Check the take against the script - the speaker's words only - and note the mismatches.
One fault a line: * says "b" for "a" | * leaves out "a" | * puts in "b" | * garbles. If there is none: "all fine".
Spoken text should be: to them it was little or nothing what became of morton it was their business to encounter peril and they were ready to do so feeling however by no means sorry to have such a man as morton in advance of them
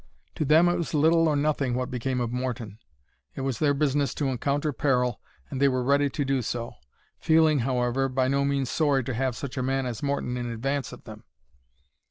all fine